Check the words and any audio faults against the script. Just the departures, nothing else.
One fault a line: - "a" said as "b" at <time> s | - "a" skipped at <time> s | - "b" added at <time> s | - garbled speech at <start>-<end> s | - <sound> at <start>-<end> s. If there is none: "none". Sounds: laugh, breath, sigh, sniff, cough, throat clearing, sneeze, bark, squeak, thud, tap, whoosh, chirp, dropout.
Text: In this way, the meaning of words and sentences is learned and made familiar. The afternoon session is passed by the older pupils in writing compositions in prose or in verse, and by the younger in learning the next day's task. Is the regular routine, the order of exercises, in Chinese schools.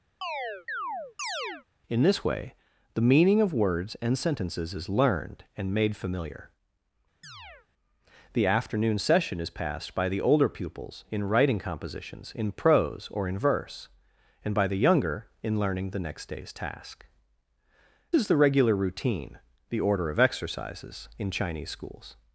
- chirp at 0.2-1.7 s
- chirp at 7.2-7.7 s